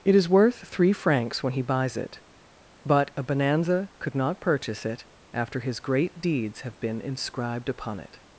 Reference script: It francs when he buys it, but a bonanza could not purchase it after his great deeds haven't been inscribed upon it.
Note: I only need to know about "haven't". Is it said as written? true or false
false